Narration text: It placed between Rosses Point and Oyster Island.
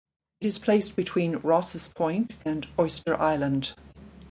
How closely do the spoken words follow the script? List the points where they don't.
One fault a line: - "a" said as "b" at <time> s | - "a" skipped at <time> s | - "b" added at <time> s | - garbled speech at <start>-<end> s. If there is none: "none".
- "is" added at 0.5 s